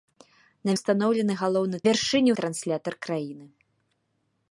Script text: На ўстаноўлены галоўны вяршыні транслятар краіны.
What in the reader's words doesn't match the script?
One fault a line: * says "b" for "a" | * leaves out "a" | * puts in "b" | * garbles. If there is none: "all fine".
all fine